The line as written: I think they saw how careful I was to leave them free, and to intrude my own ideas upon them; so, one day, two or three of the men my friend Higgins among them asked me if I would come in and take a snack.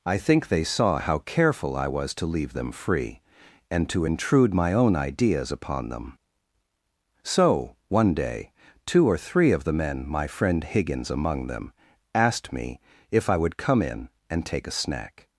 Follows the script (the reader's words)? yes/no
yes